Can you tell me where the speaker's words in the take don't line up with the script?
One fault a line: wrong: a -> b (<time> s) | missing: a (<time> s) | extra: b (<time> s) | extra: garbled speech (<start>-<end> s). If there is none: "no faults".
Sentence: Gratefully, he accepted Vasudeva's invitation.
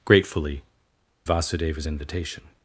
missing: he accepted (0.6 s)